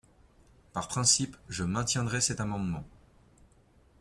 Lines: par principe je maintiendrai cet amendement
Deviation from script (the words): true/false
false